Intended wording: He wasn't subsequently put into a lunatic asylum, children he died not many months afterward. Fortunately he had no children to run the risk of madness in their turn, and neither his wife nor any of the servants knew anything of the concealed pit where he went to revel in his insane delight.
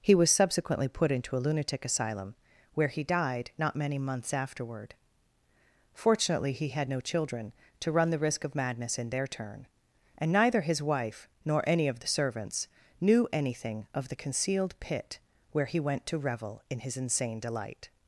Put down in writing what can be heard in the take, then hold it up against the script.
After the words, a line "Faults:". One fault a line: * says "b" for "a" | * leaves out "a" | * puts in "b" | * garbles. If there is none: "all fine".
He was subsequently put into a lunatic asylum, where he died not many months afterward. Fortunately he had no children to run the risk of madness in their turn, and neither his wife nor any of the servants knew anything of the concealed pit where he went to revel in his insane delight.
Faults:
* says "was" for "wasn't"
* says "where" for "children"